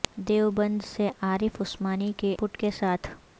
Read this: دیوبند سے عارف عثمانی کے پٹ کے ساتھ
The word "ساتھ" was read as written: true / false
true